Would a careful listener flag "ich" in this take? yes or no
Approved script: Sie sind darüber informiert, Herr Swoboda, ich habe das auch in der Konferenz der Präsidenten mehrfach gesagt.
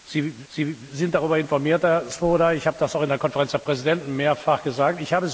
no